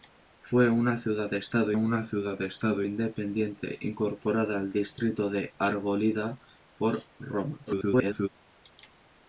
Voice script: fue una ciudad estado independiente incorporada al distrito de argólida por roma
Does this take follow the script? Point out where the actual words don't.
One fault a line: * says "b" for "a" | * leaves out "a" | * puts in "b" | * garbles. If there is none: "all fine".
* puts in "una ciudad estado"
* garbles